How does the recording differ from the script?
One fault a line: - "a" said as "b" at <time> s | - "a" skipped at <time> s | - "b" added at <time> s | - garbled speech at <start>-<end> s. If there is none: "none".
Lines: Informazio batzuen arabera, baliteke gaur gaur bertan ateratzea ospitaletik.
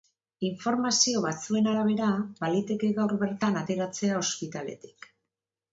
- "gaur" skipped at 3.2 s